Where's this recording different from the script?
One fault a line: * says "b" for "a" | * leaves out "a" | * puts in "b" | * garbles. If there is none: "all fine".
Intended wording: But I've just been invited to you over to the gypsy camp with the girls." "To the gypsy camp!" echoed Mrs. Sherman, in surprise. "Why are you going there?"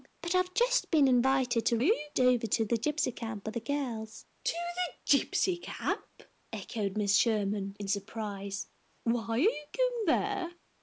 all fine